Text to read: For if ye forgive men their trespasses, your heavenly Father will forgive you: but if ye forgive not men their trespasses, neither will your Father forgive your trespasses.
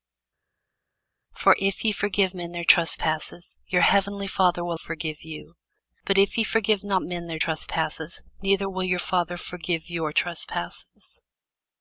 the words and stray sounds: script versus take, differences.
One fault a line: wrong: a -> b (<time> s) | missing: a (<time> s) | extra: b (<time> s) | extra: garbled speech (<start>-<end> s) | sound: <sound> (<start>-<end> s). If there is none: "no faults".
no faults